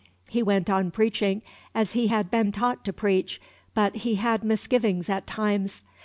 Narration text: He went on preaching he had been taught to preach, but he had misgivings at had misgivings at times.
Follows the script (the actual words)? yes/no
no